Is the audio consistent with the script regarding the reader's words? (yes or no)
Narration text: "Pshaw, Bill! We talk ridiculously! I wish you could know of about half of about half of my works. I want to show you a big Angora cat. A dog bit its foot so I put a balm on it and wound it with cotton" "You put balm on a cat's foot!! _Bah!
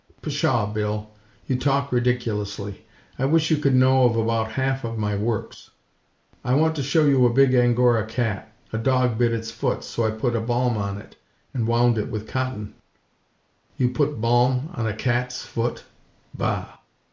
no